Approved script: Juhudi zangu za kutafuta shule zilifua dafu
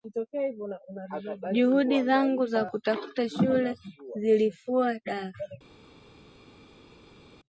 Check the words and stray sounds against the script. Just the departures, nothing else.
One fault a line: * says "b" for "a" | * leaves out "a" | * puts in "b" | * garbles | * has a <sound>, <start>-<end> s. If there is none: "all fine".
all fine